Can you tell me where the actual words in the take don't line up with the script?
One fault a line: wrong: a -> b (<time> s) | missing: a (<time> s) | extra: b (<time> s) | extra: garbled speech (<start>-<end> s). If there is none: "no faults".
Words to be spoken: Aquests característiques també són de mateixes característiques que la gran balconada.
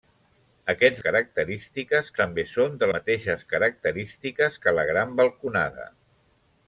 no faults